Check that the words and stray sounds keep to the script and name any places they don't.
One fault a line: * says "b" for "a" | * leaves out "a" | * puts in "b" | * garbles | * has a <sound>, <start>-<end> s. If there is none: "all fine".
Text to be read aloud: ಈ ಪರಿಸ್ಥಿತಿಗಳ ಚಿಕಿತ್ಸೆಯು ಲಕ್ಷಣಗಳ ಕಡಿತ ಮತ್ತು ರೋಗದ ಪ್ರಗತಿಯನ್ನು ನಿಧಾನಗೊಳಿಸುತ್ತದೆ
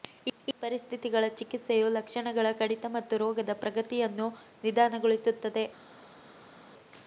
* puts in "ಈ"